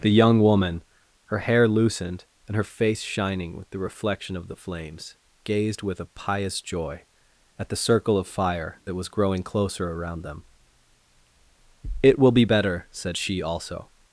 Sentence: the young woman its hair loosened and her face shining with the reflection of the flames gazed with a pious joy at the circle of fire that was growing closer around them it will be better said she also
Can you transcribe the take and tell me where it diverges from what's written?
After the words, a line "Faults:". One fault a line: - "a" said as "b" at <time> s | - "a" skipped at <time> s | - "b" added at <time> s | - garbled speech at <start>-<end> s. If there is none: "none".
the young woman her hair loosened and her face shining with the reflection of the flames gazed with a pious joy at the circle of fire that was growing closer around them it will be better said she also
Faults:
- "its" said as "her" at 1.2 s